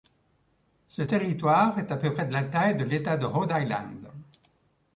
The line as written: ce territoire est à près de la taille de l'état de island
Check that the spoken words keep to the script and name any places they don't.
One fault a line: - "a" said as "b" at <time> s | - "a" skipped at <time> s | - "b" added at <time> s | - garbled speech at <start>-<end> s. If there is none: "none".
- "peu" added at 2.0 s
- "rhode" added at 3.2 s